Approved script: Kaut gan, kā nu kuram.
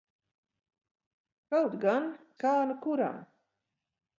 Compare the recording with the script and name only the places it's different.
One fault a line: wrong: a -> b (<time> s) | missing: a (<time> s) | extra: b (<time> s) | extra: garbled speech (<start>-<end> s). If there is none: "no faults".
no faults